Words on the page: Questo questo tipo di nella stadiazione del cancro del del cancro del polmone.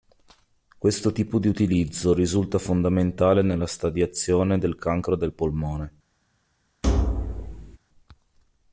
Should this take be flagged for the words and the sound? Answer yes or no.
yes